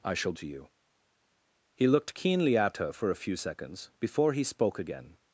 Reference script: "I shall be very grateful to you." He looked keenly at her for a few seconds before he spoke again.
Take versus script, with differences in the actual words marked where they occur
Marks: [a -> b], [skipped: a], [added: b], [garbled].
"I shall [skipped: be very grateful] to you." He looked keenly at her for a few seconds before he spoke again.